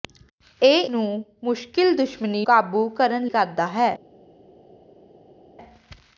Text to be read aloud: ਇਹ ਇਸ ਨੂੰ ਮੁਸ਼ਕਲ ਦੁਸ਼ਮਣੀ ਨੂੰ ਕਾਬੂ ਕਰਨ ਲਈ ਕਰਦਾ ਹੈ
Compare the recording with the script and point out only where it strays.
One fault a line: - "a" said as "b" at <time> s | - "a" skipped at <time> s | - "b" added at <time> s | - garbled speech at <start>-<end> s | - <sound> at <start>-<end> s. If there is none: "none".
- "ਇਸ" skipped at 0.8 s
- "ਨੂੰ" skipped at 2.4 s
- "ਲਈ" skipped at 3.3 s